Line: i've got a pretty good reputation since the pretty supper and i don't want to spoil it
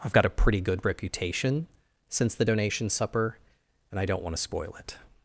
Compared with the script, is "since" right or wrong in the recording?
right